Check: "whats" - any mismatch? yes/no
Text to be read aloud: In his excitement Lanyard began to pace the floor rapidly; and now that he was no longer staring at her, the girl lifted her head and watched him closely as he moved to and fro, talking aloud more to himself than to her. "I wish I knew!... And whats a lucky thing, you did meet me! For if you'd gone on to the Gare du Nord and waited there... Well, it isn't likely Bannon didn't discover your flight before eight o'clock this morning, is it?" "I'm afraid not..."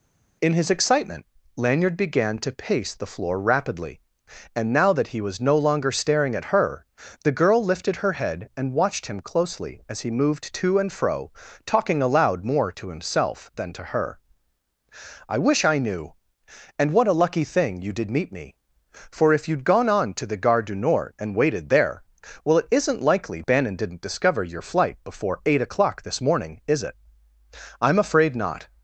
yes